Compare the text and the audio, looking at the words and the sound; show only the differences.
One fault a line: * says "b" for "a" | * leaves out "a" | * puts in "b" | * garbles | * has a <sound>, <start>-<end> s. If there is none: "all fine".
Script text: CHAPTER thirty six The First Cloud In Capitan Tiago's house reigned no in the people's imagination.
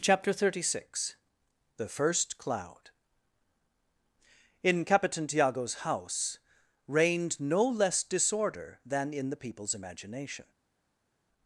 * puts in "less disorder than"